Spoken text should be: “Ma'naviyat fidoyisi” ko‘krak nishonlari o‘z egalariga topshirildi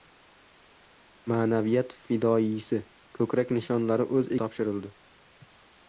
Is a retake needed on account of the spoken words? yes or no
yes